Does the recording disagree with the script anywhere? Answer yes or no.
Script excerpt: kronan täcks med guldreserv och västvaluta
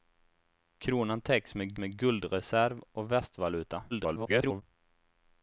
yes